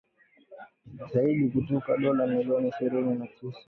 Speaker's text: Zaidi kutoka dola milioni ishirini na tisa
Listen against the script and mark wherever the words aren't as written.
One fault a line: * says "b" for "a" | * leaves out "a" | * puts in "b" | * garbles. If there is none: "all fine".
all fine